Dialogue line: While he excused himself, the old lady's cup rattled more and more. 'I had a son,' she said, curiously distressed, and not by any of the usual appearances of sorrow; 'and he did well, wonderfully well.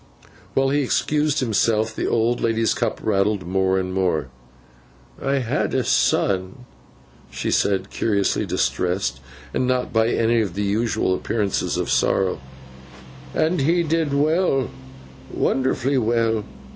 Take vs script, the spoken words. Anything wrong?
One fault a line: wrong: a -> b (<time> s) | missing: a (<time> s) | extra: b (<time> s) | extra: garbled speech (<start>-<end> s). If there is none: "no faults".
no faults